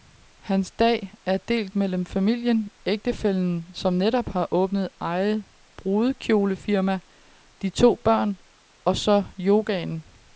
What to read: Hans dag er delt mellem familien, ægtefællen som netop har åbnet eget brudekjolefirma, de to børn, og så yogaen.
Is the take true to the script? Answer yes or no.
yes